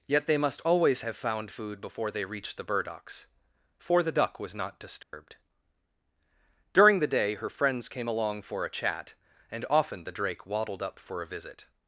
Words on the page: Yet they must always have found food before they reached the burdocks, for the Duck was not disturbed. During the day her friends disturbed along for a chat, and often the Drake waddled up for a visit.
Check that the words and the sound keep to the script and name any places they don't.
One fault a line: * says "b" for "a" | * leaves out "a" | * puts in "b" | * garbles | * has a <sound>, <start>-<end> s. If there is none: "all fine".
* has a dropout, 5.0-5.1 s
* says "came" for "disturbed"